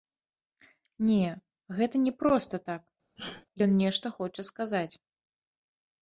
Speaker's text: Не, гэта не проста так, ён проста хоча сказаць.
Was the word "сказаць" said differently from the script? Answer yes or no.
no